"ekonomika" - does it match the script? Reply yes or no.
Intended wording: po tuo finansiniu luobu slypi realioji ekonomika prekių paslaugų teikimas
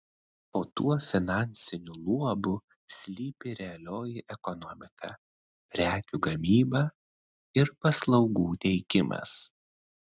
yes